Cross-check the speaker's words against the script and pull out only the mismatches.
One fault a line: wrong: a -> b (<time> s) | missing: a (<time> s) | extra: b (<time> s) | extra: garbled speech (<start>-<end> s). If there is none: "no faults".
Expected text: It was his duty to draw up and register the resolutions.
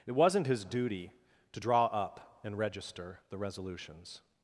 wrong: was -> wasn't (0.1 s)